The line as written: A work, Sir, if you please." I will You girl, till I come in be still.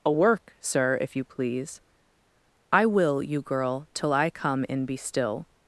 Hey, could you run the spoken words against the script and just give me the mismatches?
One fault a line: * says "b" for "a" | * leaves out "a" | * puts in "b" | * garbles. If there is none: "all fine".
all fine